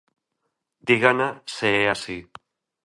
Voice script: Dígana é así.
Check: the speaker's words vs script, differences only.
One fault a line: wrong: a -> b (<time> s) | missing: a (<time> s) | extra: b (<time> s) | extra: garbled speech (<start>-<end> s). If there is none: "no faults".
extra: se (1.4 s)